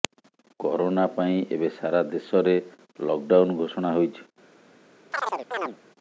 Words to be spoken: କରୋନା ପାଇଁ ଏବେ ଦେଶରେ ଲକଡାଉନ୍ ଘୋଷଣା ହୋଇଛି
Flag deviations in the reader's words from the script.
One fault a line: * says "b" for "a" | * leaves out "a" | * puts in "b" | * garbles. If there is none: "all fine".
* puts in "ସାରା"